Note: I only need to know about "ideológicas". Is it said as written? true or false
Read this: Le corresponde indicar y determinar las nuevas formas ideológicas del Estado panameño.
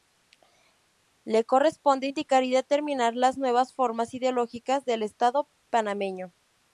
true